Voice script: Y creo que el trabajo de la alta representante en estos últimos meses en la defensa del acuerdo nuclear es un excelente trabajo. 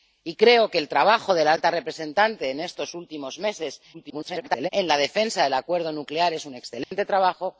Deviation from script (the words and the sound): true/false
true